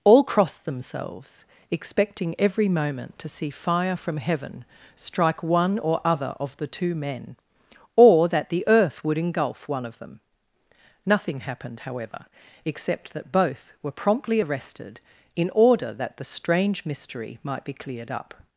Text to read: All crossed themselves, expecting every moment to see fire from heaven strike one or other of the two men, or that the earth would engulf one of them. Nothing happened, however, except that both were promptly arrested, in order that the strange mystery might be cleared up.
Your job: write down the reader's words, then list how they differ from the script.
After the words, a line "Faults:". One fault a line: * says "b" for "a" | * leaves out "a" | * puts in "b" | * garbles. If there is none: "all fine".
All crossed themselves, expecting every moment to see fire from heaven strike one or other of the two men, or that the earth would engulf one of them. Nothing happened, however, except that both were promptly arrested, in order that the strange mystery might be cleared up.
Faults:
all fine